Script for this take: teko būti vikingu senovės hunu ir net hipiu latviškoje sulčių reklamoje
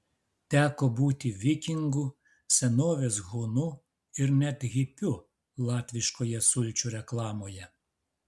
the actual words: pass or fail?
pass